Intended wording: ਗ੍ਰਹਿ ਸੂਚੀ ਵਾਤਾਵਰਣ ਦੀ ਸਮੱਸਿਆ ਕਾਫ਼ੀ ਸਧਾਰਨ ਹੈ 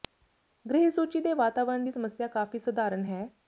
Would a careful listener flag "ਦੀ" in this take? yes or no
no